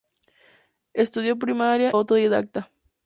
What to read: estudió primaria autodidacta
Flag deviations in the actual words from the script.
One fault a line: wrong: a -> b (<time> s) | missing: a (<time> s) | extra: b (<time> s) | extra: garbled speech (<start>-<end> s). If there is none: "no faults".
no faults